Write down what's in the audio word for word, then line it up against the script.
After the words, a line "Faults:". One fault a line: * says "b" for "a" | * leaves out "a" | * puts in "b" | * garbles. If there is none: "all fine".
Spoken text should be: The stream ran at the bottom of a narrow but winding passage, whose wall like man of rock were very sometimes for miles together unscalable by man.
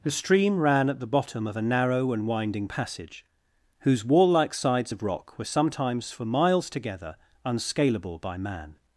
The stream ran at the bottom of a narrow and winding passage, whose wall like sides of rock were sometimes for miles together unscalable by man.
Faults:
* says "and" for "but"
* says "sides" for "man"
* leaves out "very"